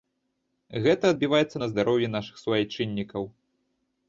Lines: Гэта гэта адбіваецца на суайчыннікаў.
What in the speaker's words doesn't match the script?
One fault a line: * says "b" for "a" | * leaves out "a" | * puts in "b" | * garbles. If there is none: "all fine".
* leaves out "гэта"
* puts in "здароўі нашых"